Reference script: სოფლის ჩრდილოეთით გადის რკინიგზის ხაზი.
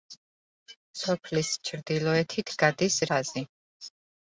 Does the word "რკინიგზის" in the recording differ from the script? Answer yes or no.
yes